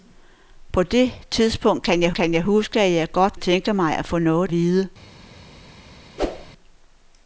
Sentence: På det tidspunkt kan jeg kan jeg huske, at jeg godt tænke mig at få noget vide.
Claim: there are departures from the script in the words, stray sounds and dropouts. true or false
true